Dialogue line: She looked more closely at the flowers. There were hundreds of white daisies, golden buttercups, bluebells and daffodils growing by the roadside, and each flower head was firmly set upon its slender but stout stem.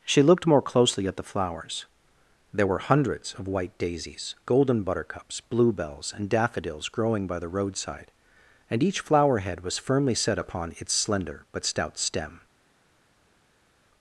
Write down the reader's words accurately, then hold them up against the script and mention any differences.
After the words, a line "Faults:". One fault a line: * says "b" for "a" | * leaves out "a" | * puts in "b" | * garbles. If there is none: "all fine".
She looked more closely at the flowers. There were hundreds of white daisies, golden buttercups, bluebells and daffodils growing by the roadside, and each flower head was firmly set upon its slender but stout stem.
Faults:
all fine